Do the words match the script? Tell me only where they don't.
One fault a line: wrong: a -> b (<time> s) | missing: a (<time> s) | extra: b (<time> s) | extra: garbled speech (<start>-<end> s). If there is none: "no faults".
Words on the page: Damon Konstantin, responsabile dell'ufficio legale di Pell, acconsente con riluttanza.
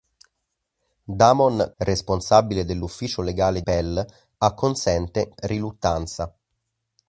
missing: Konstantin (1.7 s)
missing: di (3.6 s)
missing: con (5.3 s)